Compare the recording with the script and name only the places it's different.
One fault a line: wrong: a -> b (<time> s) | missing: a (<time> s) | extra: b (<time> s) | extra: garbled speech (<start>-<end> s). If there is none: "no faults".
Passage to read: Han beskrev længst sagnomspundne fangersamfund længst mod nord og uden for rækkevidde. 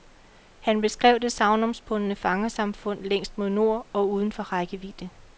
wrong: længst -> det (1.2 s)